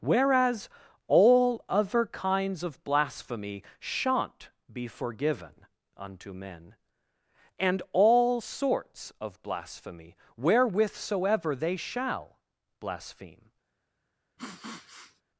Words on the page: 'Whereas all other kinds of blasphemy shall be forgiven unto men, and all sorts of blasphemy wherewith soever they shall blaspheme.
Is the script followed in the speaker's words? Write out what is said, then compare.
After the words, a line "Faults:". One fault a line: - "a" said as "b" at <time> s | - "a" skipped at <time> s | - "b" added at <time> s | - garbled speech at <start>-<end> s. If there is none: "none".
'Whereas all other kinds of blasphemy shan't be forgiven unto men, and all sorts of blasphemy wherewith soever they shall blaspheme.
Faults:
- "shall" said as "shan't" at 3.8 s